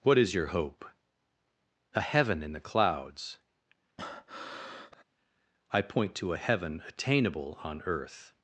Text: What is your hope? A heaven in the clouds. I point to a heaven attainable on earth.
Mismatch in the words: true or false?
false